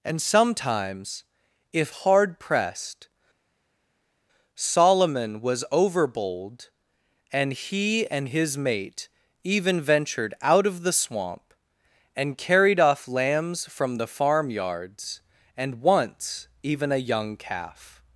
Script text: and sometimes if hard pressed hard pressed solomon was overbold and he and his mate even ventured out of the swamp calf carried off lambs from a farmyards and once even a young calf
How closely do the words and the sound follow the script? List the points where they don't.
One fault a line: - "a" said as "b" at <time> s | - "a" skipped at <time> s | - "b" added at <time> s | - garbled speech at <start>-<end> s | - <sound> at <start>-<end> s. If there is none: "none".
- "hard pressed" skipped at 3.1 s
- "calf" said as "and" at 12.2 s
- "a" said as "the" at 14.0 s